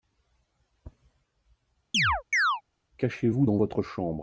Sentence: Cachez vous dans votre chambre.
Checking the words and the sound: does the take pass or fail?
fail